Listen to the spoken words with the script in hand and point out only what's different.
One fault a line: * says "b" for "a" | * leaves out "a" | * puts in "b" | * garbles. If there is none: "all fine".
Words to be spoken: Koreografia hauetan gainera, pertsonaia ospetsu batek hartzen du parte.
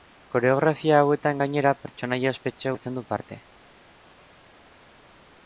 * leaves out "batek"